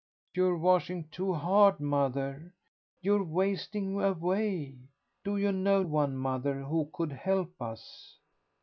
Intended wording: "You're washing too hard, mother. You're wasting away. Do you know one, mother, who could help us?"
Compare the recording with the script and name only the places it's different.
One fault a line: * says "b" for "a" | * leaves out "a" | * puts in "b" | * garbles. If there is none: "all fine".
all fine